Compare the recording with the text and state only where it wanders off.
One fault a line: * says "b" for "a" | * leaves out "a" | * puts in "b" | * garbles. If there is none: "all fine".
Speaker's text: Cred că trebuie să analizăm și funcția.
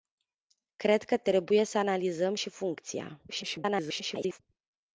* garbles